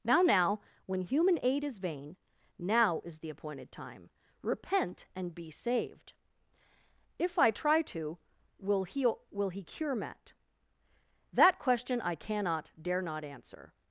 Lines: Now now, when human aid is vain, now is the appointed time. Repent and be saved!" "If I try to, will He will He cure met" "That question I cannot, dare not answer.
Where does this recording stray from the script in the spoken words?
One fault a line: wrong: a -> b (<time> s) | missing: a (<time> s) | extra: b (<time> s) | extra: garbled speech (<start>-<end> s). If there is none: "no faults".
no faults